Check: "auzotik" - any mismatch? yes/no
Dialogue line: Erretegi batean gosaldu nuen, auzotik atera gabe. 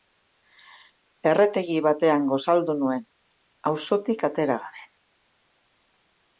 no